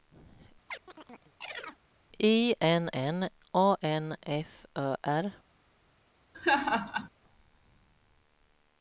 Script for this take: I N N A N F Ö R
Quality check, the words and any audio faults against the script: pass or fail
fail